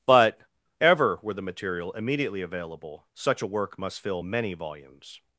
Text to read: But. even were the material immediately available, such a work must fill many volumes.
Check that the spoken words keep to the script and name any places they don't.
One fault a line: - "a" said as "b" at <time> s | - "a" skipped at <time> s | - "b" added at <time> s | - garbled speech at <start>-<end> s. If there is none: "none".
- "even" said as "ever" at 0.8 s